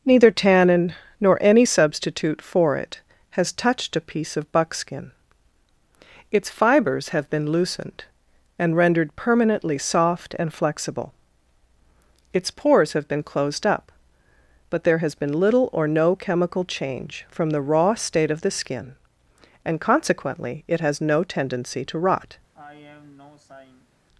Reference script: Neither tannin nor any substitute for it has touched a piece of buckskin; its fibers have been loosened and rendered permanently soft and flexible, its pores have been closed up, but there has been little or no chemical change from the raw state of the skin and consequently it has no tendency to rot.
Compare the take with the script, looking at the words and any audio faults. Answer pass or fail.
fail